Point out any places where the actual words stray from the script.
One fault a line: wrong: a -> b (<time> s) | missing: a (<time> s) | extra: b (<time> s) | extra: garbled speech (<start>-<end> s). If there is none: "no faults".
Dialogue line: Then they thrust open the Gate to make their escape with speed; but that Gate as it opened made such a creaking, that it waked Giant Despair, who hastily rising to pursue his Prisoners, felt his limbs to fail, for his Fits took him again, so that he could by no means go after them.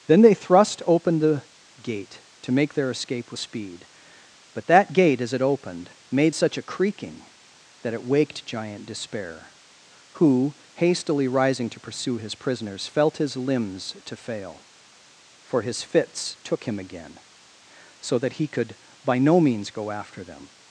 no faults